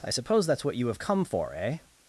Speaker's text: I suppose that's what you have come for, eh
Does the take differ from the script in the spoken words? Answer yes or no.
no